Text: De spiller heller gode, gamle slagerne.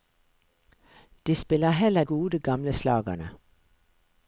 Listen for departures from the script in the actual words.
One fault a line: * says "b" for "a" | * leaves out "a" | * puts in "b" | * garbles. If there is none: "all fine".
all fine